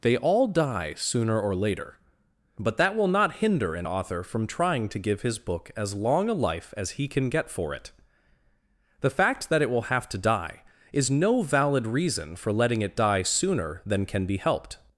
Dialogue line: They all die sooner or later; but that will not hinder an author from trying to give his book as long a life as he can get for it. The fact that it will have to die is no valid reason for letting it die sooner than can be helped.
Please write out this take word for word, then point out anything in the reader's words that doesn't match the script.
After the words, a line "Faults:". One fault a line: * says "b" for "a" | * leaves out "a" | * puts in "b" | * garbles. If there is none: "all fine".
They all die sooner or later; but that will not hinder an author from trying to give his book as long a life as he can get for it. The fact that it will have to die is no valid reason for letting it die sooner than can be helped.
Faults:
all fine